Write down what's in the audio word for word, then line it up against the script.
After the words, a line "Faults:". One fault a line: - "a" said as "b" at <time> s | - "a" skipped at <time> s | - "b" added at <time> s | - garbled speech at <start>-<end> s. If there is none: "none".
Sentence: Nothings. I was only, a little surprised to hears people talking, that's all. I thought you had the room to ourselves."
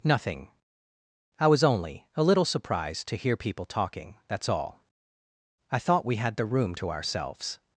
Nothing. I was only, a little surprised to hear people talking, that's all. I thought we had the room to ourselves."
Faults:
- "Nothings" said as "Nothing" at 0.0 s
- "hears" said as "hear" at 3.1 s
- "you" said as "we" at 6.0 s